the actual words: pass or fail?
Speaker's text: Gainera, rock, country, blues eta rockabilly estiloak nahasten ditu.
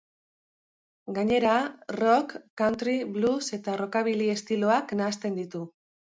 pass